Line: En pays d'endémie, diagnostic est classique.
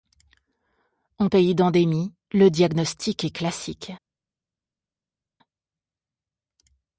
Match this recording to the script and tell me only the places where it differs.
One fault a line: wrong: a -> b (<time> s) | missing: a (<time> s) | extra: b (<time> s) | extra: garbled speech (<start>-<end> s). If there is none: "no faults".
extra: le (2.3 s)